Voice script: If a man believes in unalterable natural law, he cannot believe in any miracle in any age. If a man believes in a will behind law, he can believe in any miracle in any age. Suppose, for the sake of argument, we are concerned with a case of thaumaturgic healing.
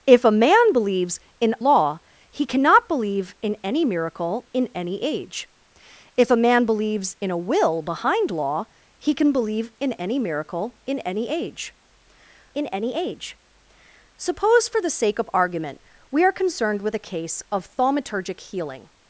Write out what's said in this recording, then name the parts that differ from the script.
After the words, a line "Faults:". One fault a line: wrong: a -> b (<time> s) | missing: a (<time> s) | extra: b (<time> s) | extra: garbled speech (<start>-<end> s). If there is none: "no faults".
If a man believes in law, he cannot believe in any miracle in any age. If a man believes in a will behind law, he can believe in any miracle in any age in any age. Suppose, for the sake of argument, we are concerned with a case of thaumaturgic healing.
Faults:
missing: unalterable natural (1.6 s)
extra: in any age (12.5 s)